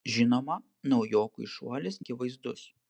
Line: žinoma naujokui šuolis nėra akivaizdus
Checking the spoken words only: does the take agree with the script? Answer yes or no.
no